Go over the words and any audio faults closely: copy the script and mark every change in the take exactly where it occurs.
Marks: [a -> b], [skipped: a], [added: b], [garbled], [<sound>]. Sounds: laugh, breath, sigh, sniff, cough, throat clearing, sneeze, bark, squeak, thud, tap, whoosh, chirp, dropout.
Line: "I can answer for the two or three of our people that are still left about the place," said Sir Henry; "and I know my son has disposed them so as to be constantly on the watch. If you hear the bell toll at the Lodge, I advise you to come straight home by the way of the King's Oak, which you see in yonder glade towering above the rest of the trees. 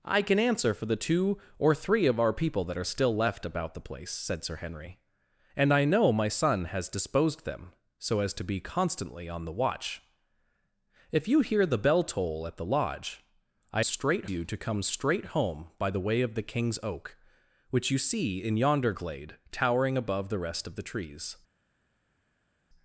"I can answer for the two or three of our people that are still left about the place," said Sir Henry; "and I know my son has disposed them so as to be constantly on the watch. If you hear the bell toll at the Lodge, I [advise -> straight] you to come straight home by the way of the King's Oak, which you see in yonder glade towering above the rest of the trees.